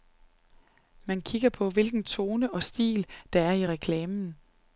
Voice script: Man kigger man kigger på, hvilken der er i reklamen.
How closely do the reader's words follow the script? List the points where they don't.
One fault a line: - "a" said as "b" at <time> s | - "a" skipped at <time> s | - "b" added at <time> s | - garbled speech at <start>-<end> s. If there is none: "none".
- "man kigger på hvilken" said as "på hvilken tone og stil" at 1.5 s